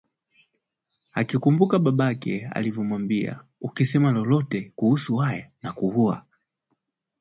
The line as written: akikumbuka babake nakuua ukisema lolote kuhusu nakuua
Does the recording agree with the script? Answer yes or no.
no